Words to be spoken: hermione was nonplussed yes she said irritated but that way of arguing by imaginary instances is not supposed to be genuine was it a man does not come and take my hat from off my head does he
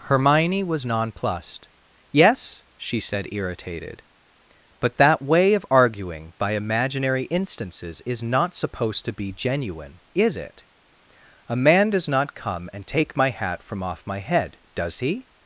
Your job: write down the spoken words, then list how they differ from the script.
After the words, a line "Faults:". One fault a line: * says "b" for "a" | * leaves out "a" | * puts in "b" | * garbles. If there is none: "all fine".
hermione was nonplussed yes she said irritated but that way of arguing by imaginary instances is not supposed to be genuine is it a man does not come and take my hat from off my head does he
Faults:
* says "is" for "was"